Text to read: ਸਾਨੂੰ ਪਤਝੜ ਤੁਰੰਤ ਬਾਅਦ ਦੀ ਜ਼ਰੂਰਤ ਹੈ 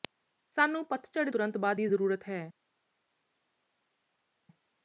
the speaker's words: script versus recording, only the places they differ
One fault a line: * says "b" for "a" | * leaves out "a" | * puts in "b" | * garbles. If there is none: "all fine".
all fine